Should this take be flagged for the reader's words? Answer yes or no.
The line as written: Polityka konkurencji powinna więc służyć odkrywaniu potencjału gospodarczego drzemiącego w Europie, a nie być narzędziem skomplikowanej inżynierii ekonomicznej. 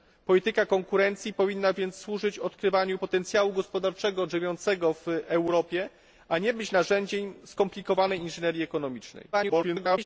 yes